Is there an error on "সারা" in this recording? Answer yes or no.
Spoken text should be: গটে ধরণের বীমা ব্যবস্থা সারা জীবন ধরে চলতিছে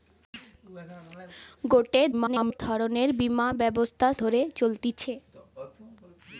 yes